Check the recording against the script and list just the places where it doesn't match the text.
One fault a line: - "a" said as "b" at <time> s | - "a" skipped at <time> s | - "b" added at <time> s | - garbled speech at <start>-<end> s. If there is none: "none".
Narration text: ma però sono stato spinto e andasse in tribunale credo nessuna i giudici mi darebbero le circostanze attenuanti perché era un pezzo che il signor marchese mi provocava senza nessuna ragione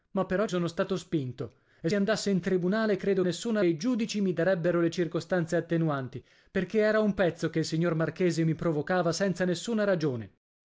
none